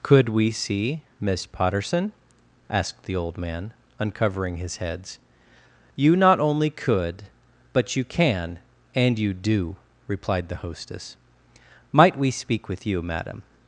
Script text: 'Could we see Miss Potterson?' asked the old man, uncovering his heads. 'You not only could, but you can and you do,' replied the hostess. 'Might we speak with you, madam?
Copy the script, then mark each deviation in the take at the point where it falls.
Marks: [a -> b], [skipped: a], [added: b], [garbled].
'Could we see Miss Potterson?' asked the old man, uncovering his heads. 'You not only could, but you can and you do,' replied the hostess. 'Might we speak with you, madam?